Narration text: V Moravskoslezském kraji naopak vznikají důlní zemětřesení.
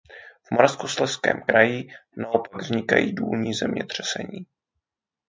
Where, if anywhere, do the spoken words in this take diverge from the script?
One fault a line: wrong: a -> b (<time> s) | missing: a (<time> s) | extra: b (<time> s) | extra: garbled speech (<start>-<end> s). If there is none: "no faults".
no faults